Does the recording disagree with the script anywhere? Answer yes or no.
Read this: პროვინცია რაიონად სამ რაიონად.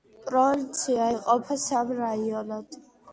yes